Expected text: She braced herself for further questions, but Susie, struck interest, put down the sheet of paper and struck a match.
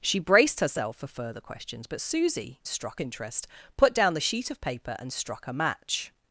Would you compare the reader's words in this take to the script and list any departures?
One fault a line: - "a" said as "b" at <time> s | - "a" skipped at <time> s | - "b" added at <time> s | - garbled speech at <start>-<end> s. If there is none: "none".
none